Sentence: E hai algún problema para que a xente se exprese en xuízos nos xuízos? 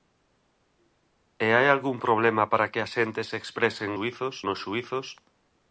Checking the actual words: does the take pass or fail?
pass